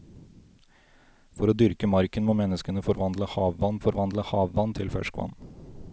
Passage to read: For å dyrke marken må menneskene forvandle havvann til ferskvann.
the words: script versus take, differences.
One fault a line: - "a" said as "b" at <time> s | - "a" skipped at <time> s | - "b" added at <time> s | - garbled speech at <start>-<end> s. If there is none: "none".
- "forvandle havvann" added at 3.8 s